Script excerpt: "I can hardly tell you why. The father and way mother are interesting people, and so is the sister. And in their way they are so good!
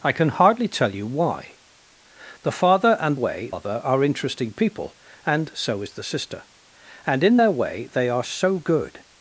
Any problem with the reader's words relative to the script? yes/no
no